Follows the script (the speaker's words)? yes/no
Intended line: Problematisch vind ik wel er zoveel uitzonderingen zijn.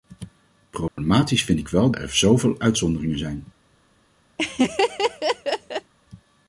yes